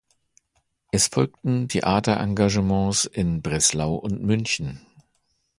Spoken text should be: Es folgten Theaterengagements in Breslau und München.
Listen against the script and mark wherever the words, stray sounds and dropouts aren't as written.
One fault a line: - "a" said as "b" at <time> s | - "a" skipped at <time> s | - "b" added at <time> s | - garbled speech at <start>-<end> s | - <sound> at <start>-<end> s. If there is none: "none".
none